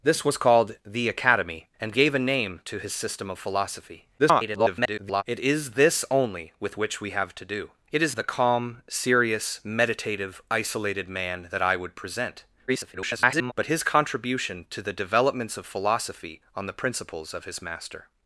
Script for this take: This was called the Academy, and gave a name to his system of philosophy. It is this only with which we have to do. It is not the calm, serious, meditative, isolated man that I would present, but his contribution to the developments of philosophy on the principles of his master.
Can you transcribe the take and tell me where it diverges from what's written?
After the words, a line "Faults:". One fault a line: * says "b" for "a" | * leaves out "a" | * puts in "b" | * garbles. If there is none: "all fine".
This was called the Academy, and gave a name to his system of philosophy. [garbled] It is this only with which we have to do. It is the calm, serious, meditative, isolated man that I would present, [garbled] but his contribution to the developments of philosophy on the principles of his master.
Faults:
* garbles
* leaves out "not"
* garbles